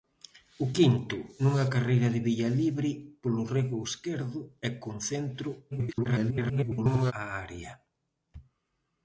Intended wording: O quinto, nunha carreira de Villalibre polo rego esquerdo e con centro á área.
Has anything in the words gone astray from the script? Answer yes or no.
yes